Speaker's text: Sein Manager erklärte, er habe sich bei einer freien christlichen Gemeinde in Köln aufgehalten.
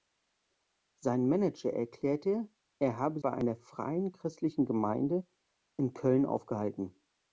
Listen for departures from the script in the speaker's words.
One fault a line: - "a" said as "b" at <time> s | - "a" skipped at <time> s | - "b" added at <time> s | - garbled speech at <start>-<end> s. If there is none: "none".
- "sich" skipped at 3.2 s